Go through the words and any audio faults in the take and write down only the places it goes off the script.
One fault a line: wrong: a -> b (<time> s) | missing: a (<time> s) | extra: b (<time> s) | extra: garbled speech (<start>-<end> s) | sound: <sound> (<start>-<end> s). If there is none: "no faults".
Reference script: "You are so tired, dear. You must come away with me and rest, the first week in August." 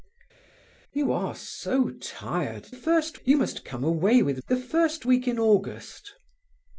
wrong: dear -> first (2.7 s)
missing: me and rest (4.4 s)